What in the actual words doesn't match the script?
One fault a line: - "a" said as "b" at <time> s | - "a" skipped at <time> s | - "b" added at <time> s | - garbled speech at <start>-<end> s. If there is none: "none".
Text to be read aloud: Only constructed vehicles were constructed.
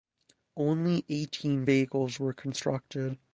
- "constructed" said as "eighteen" at 1.1 s